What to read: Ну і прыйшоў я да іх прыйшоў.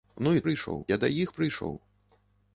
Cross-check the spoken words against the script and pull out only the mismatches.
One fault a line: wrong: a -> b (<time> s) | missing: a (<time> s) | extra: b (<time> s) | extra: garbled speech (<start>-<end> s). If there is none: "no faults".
no faults